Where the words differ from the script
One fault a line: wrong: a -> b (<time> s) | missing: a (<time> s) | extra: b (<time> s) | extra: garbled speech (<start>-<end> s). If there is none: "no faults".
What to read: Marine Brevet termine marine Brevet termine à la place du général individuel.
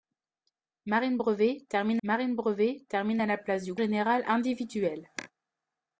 no faults